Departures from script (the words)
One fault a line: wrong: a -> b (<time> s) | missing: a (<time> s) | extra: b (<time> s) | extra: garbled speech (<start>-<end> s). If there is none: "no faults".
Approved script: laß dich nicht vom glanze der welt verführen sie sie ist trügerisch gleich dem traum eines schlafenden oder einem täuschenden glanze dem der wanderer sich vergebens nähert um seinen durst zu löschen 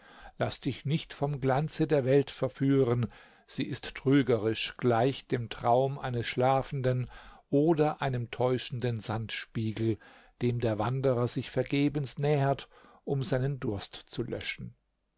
missing: sie (3.6 s)
wrong: glanze -> sandspiegel (9.0 s)